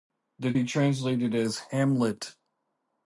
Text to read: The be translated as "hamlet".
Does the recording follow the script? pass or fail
pass